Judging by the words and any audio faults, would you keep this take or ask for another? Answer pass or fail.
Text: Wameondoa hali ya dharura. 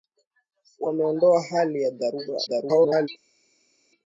fail